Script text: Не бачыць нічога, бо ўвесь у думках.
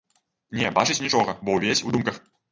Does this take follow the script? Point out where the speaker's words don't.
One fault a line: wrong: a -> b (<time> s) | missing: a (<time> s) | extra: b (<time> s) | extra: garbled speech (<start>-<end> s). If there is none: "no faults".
no faults